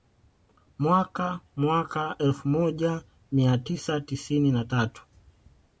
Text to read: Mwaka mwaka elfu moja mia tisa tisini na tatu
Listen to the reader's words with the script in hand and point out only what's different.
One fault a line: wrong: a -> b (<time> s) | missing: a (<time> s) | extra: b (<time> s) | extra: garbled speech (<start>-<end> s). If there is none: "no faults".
no faults